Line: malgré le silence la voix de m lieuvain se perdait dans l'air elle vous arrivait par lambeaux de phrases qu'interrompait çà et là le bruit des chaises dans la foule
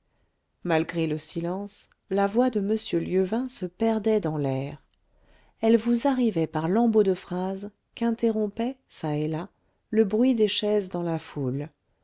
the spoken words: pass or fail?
pass